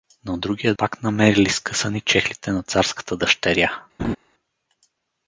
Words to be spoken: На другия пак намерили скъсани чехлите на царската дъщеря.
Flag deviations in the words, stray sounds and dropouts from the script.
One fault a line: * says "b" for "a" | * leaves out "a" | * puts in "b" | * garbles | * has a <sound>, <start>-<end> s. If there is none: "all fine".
* has a laugh, 4.0-4.2 s